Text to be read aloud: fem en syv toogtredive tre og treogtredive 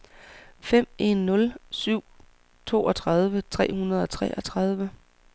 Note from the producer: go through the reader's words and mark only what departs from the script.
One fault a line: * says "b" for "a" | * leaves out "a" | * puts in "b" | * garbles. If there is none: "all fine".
* puts in "nul"
* puts in "hundrede"